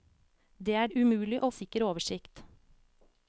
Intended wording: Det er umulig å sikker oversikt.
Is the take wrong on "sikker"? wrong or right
right